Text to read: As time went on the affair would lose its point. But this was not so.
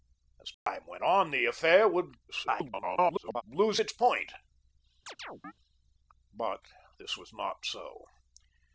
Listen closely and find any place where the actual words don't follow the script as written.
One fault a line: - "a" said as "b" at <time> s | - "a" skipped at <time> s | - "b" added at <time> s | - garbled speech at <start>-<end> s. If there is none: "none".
- garbled speech at 2.3-3.4 s